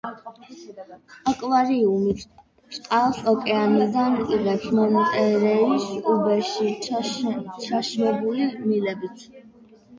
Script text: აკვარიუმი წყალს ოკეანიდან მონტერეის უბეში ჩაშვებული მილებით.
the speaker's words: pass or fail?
fail